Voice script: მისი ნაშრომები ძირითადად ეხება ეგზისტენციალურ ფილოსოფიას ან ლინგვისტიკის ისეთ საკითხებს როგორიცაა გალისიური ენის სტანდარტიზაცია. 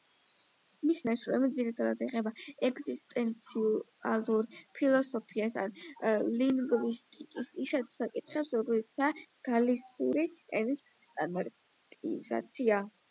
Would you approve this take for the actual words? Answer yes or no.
yes